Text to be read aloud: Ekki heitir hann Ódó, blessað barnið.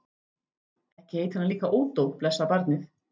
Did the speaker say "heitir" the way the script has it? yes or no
yes